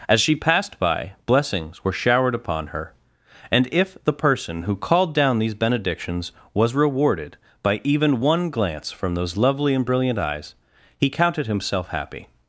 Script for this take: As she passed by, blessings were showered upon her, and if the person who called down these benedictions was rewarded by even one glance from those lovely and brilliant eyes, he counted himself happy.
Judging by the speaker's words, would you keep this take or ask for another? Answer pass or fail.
pass